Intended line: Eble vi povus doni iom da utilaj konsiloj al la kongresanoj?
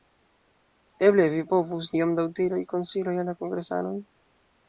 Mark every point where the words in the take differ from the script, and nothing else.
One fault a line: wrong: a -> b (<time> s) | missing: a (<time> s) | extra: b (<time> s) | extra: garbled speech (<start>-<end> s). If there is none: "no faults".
missing: doni (1.9 s)